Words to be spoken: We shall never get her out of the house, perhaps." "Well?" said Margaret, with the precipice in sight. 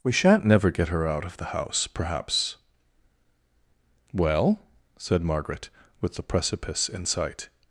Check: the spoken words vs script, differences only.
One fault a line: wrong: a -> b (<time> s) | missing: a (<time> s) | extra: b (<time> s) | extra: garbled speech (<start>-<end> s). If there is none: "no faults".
wrong: shall -> shan't (0.1 s)